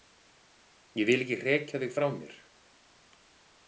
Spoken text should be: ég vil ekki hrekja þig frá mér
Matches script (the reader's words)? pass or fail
pass